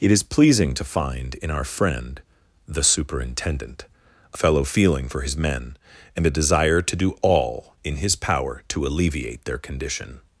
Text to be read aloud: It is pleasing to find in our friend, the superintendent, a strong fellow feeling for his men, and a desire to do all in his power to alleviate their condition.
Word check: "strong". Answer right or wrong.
wrong